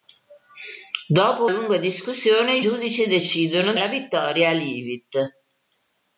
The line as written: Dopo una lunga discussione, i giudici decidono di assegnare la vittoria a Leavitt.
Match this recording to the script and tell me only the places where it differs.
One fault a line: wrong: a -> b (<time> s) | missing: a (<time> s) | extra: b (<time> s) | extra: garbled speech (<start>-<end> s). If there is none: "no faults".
missing: una (1.4 s)
missing: di assegnare (3.7 s)